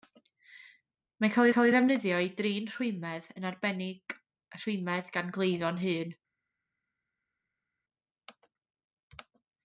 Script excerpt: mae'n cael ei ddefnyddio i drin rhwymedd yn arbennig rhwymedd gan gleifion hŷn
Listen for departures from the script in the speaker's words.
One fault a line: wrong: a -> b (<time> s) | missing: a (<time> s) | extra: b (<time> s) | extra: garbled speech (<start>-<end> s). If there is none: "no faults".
extra: cael (1.5 s)